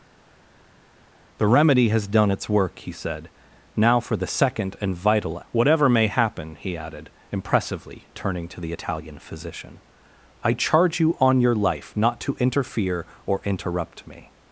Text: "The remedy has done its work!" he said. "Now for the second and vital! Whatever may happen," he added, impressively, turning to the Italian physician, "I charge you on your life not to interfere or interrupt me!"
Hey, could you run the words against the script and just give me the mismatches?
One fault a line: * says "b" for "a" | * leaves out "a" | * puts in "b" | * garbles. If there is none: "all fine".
all fine